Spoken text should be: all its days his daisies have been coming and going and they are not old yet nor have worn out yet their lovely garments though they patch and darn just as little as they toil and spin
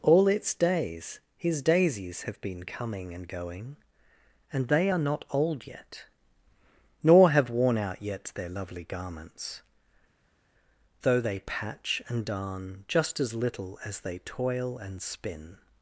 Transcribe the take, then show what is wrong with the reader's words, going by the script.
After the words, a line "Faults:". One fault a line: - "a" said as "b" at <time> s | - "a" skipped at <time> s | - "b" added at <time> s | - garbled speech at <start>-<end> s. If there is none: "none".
all its days his daisies have been coming and going and they are not old yet nor have worn out yet their lovely garments though they patch and darn just as little as they toil and spin
Faults:
none